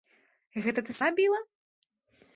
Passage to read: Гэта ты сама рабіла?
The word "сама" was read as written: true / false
false